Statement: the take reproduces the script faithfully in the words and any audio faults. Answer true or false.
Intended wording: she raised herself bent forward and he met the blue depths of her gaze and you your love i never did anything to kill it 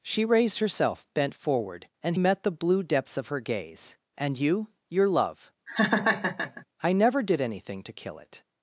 false